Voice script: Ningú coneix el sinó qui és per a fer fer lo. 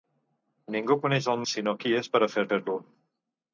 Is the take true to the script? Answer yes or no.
yes